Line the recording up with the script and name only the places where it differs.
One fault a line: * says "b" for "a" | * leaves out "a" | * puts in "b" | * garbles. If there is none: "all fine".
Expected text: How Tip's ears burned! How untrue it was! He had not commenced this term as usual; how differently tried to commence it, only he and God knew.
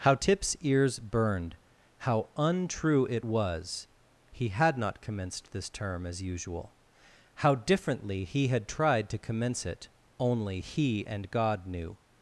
* puts in "he had"